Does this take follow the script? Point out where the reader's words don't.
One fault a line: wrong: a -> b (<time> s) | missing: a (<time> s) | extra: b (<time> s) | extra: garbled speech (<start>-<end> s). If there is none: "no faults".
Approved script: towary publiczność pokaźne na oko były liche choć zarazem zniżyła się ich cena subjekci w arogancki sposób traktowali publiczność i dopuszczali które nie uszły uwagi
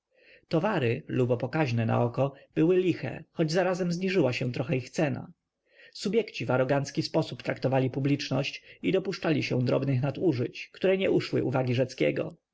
wrong: publiczność -> lubo (1.1 s)
extra: trochę (4.5 s)
extra: się drobnych nadużyć (9.4 s)